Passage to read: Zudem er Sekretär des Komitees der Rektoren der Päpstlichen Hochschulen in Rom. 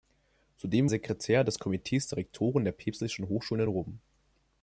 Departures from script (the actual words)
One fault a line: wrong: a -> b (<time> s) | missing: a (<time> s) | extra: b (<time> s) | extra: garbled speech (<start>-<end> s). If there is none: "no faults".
no faults